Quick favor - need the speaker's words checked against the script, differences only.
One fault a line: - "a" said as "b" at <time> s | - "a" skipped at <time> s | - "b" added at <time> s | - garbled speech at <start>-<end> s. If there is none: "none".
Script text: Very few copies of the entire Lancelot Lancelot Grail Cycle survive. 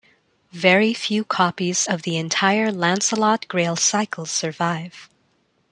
- "Lancelot" skipped at 3.5 s